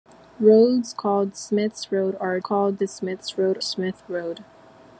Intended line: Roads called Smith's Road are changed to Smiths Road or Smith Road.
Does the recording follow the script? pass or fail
fail